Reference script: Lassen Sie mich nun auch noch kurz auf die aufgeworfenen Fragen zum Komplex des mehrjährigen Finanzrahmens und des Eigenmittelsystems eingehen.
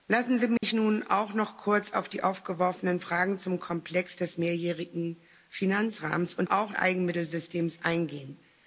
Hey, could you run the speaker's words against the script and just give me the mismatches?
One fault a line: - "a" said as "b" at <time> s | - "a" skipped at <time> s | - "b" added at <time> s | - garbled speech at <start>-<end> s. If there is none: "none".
- "des" said as "auch" at 6.4 s